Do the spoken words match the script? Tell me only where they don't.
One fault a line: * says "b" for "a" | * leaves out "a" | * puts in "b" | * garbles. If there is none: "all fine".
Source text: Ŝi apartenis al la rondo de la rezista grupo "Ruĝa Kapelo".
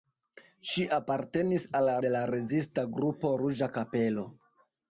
* leaves out "rondo"